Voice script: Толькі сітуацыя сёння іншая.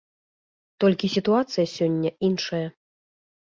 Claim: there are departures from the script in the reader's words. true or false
false